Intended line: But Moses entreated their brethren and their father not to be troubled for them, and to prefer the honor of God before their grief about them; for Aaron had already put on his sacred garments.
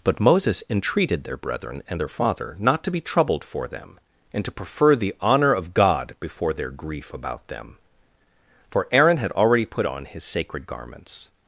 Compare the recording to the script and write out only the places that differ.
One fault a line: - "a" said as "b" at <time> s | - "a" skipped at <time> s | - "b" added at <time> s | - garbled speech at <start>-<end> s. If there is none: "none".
none